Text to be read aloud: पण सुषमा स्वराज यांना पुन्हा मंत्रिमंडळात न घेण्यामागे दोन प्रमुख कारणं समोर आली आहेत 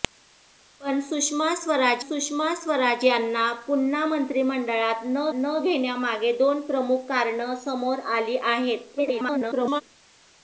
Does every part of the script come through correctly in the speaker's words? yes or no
no